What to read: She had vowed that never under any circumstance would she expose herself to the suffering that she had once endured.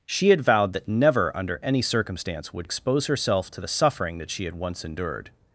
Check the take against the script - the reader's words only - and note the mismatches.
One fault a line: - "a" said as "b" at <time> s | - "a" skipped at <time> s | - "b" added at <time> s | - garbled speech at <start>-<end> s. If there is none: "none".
- "she" skipped at 2.7 s